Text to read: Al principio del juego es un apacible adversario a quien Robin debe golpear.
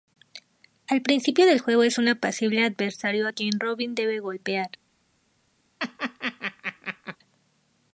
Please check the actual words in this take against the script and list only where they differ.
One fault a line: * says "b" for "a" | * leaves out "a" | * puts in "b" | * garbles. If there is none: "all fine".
all fine